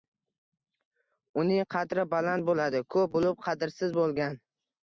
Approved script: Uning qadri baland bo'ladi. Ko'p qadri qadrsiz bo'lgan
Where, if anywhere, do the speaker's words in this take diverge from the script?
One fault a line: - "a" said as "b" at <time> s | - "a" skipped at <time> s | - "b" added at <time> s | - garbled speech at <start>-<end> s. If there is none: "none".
- "qadri" said as "bo'lib" at 3.2 s